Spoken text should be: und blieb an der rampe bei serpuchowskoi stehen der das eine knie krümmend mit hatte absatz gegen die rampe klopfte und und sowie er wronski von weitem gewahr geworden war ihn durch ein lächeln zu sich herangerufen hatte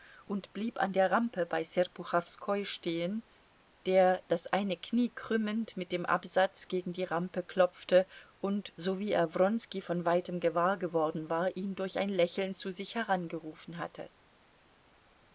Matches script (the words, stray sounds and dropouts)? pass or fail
fail